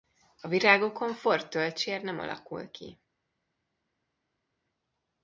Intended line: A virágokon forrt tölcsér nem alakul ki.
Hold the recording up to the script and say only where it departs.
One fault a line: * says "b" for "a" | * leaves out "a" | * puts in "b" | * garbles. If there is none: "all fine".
all fine